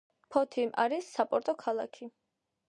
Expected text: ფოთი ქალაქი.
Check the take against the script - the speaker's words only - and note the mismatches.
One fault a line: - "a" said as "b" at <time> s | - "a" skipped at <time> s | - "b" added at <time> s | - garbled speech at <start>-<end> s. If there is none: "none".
- "არის საპორტო" added at 0.8 s